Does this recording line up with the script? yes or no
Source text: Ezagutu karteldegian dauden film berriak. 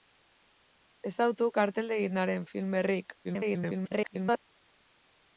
no